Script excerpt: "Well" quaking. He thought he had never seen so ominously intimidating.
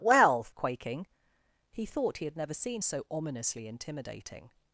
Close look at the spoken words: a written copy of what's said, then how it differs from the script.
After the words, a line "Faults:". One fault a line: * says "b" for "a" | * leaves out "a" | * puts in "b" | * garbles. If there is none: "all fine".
"Well" quaking. He thought he had never seen so ominously intimidating.
Faults:
all fine